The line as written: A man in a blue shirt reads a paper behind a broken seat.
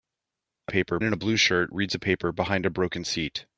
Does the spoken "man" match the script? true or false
false